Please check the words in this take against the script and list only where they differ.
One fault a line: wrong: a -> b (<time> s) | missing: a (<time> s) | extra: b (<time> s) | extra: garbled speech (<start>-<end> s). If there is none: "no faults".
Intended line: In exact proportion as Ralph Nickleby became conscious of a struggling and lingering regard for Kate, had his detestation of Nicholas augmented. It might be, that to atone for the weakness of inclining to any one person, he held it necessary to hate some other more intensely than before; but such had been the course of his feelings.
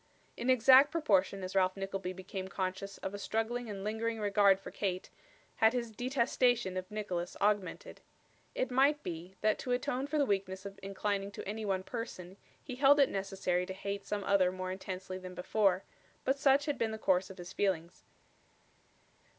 no faults